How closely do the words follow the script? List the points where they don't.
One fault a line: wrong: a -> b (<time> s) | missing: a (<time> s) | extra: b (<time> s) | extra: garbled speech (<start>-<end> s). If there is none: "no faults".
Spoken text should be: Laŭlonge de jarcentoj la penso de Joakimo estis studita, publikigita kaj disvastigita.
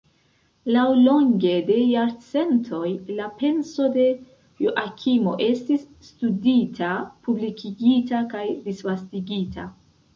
no faults